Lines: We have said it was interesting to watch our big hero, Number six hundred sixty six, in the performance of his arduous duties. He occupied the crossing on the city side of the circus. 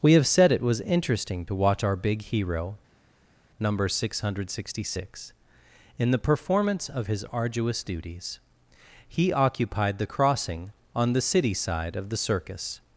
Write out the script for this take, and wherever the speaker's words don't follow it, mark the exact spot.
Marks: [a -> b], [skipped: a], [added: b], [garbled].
We have said it was interesting to watch our big hero, Number six hundred sixty six, in the performance of his arduous duties. He occupied the crossing on the city side of the circus.